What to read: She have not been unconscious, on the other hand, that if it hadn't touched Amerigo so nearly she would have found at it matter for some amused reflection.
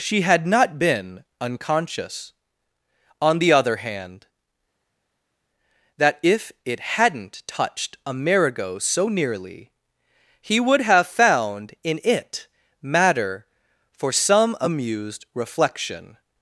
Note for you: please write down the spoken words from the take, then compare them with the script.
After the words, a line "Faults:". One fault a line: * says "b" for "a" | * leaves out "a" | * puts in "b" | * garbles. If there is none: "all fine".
She had not been unconscious, on the other hand, that if it hadn't touched Amerigo so nearly he would have found in it matter for some amused reflection.
Faults:
* says "had" for "have"
* says "he" for "she"
* says "in" for "at"